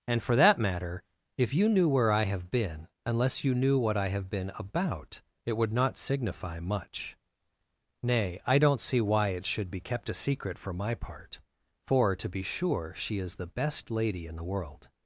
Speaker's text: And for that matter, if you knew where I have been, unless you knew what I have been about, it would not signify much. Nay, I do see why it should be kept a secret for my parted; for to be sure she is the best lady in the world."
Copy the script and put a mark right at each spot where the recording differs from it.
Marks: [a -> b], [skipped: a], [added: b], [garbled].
And for that matter, if you knew where I have been, unless you knew what I have been about, it would not signify much. Nay, I [do -> don't] see why it should be kept a secret for my [parted; -> part] for to be sure she is the best lady in the world."